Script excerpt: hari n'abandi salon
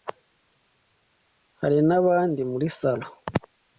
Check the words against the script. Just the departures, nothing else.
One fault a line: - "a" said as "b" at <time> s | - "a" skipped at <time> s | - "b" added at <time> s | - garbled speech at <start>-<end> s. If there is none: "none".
- "muri" added at 2.5 s